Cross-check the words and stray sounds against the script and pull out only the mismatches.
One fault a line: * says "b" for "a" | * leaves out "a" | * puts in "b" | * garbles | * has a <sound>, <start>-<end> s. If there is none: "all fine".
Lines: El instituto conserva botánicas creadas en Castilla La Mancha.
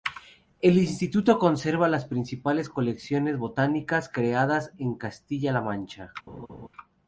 * puts in "las principales colecciones"
* has a laugh, 6.3-6.7 s